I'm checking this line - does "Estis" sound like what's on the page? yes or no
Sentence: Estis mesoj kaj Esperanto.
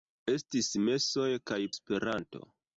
yes